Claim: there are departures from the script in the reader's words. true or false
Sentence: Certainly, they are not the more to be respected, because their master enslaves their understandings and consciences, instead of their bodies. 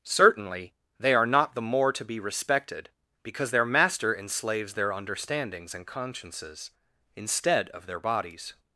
false